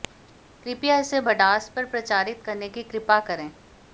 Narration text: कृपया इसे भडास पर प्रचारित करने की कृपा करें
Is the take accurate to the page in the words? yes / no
yes